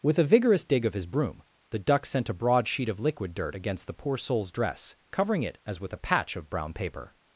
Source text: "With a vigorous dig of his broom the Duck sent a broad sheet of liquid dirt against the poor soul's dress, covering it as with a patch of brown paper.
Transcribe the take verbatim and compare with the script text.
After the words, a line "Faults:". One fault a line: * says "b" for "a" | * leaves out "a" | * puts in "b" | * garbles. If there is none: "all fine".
"With a vigorous dig of his broom the Duck sent a broad sheet of liquid dirt against the poor soul's dress, covering it as with a patch of brown paper.
Faults:
all fine